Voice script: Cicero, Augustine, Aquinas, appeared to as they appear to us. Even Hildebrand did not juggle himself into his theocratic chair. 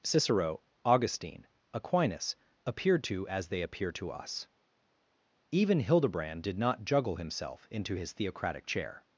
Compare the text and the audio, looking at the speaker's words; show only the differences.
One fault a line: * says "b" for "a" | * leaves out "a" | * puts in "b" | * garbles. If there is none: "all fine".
all fine